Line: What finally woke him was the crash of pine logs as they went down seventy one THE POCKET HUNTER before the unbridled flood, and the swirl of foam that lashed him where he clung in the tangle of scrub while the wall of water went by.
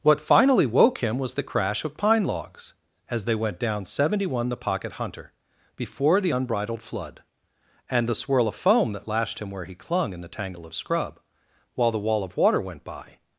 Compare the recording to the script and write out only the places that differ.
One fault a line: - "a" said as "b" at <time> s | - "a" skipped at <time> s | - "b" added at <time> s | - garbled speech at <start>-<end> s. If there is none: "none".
none